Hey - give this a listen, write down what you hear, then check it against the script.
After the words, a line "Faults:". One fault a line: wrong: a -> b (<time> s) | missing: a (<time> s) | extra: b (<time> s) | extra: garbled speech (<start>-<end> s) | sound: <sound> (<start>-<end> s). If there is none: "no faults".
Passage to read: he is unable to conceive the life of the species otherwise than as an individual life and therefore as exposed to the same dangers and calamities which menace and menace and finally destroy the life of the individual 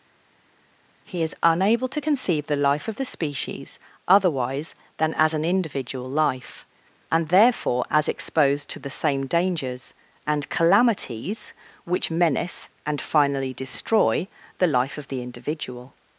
he is unable to conceive the life of the species otherwise than as an individual life and therefore as exposed to the same dangers and calamities which menace and finally destroy the life of the individual
Faults:
missing: menace and (13.0 s)